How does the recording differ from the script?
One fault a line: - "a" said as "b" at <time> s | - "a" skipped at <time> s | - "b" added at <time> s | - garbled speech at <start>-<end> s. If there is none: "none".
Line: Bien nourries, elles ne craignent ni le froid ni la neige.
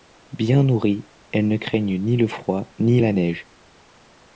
none